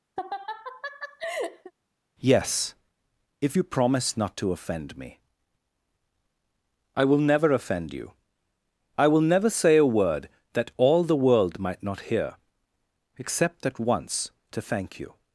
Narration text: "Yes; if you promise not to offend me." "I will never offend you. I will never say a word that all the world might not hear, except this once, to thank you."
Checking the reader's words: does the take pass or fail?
fail